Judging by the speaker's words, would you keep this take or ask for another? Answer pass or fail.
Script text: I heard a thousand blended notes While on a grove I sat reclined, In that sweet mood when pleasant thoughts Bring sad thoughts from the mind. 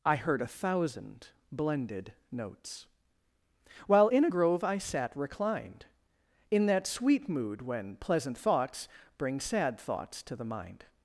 fail